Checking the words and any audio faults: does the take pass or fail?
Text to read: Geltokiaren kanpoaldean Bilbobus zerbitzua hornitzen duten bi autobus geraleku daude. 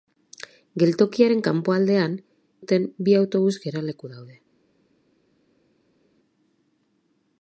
fail